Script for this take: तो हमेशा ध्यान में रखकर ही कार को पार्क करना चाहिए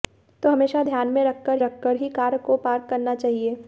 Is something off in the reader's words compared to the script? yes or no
yes